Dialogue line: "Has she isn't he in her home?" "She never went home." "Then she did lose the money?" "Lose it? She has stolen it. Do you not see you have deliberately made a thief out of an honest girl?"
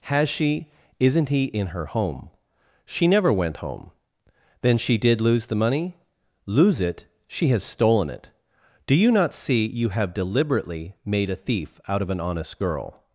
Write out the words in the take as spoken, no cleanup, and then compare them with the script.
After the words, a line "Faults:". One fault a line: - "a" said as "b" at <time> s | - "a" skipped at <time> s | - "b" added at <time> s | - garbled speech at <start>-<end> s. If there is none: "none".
"Has she isn't he in her home?" "She never went home." "Then she did lose the money?" "Lose it? She has stolen it. Do you not see you have deliberately made a thief out of an honest girl?"
Faults:
none